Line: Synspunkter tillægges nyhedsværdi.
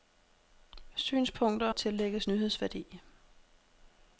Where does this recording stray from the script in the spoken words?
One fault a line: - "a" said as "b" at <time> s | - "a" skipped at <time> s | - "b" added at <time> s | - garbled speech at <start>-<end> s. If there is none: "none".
none